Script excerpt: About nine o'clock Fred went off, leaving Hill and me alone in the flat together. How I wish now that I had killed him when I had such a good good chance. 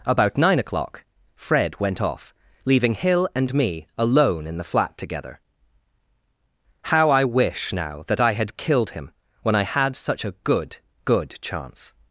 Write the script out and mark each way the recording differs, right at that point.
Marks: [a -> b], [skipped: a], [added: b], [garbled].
About nine o'clock Fred went off, leaving Hill and me alone in the flat together. How I wish now that I had killed him when I had such a good good chance.